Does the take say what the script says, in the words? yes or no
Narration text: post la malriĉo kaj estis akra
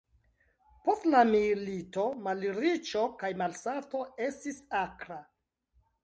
no